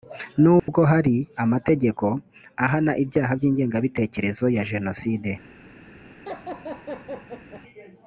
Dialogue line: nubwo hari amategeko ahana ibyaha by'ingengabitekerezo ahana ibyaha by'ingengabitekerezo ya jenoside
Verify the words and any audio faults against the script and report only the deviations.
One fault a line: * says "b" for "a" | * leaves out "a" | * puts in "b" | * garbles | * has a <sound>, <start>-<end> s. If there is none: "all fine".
* has a dropout, 0.6-0.7 s
* leaves out "ahana ibyaha by'ingengabitekerezo"
* has a laugh, 6.3-7.6 s